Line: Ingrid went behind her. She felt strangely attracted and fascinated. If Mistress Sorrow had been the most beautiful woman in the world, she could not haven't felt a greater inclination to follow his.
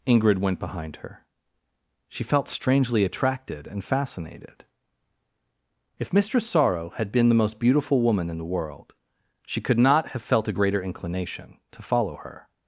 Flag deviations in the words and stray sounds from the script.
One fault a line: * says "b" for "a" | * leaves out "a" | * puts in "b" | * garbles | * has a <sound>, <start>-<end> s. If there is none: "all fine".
* says "have" for "haven't"
* says "her" for "his"